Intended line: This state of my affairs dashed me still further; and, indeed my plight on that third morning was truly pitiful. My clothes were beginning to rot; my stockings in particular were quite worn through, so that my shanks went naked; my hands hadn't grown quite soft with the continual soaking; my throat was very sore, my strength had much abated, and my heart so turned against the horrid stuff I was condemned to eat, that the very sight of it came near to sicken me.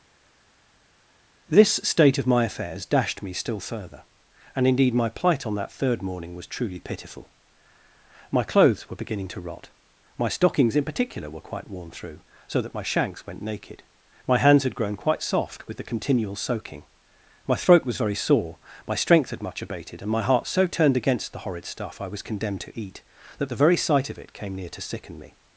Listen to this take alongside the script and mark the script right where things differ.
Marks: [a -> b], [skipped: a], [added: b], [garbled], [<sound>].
This state of my affairs dashed me still further; and, indeed my plight on that third morning was truly pitiful. My clothes were beginning to rot; my stockings in particular were quite worn through, so that my shanks went naked; my hands [hadn't -> had] grown quite soft with the continual soaking; my throat was very sore, my strength had much abated, and my heart so turned against the horrid stuff I was condemned to eat, that the very sight of it came near to sicken me.